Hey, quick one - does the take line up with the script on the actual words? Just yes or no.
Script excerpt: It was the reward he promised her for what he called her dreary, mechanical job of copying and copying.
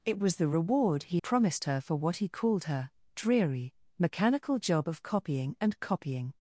yes